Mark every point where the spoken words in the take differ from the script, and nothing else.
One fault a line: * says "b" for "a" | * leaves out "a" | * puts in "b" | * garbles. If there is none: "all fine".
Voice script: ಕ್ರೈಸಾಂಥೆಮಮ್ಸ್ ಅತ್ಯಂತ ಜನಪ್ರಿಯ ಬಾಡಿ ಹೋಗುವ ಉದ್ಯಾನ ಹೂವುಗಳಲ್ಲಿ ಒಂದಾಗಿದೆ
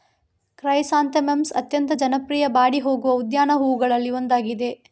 all fine